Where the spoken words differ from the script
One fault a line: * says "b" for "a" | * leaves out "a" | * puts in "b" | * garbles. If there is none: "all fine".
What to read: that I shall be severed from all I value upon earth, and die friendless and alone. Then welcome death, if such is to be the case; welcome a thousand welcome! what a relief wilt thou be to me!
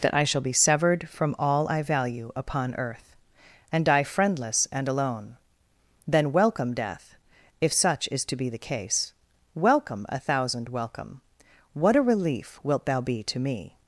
all fine